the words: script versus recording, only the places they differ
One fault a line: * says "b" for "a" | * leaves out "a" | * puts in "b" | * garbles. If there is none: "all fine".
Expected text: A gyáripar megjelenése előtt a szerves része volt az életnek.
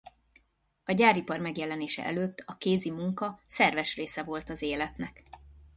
* puts in "kézi munka"